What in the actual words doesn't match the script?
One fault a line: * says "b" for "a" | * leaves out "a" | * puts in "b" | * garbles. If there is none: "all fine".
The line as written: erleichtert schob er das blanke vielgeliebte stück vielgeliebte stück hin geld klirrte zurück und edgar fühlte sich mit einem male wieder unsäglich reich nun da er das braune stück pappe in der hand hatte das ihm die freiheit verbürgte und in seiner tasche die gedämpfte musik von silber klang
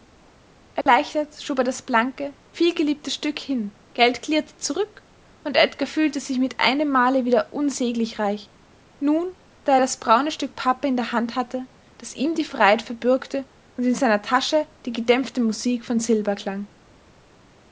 * leaves out "vielgeliebte stück"